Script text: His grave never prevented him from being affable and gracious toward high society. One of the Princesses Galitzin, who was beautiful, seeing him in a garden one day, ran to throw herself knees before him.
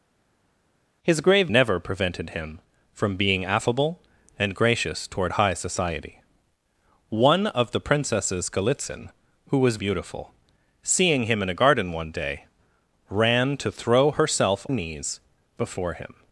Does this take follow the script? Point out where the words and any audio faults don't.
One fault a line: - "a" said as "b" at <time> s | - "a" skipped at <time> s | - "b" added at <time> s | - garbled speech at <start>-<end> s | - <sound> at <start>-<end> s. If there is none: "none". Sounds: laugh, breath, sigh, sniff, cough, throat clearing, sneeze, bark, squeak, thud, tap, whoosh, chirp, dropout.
none